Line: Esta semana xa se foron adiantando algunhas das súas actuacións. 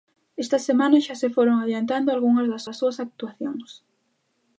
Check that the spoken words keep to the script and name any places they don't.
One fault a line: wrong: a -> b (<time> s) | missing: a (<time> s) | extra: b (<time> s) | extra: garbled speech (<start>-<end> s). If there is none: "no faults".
extra: das (2.7 s)